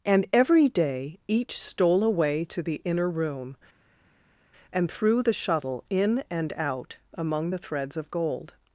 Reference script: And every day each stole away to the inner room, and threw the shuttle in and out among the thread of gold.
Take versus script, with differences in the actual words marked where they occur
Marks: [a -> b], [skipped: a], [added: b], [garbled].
And every day each stole away to the inner room, and threw the shuttle in and out among the [thread -> threads] of gold.